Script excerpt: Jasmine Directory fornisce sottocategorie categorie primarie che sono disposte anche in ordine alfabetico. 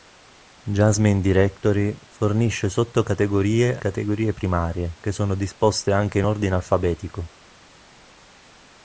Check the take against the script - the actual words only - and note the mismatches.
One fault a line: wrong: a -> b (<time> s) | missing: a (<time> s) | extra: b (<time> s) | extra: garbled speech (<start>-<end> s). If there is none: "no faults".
no faults